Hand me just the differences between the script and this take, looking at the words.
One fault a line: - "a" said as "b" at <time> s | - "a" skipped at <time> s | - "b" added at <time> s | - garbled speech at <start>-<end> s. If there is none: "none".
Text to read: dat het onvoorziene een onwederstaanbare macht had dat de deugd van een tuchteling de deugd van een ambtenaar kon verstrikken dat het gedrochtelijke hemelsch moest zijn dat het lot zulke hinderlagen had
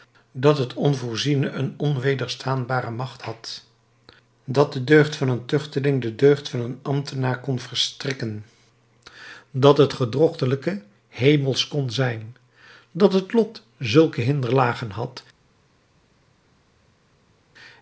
- "moest" said as "kon" at 11.7 s